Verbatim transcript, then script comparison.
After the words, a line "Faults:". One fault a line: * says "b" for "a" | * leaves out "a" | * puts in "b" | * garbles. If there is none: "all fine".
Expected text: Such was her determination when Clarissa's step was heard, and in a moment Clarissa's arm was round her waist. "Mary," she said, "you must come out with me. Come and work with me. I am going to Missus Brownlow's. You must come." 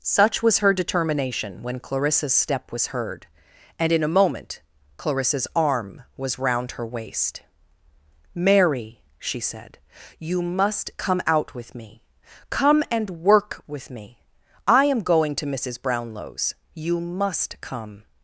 Such was her determination when Clarissa's step was heard, and in a moment Clarissa's arm was round her waist. "Mary," she said, "you must come out with me. Come and work with me. I am going to Missus Brownlow's. You must come."
Faults:
all fine